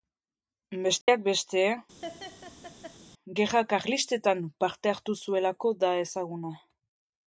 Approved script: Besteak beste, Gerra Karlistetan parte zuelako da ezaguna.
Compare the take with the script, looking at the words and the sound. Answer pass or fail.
fail